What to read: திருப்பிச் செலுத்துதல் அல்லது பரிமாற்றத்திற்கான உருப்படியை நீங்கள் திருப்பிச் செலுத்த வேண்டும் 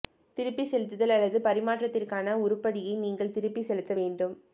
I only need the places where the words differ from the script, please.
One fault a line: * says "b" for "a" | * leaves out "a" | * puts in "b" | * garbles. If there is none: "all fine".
all fine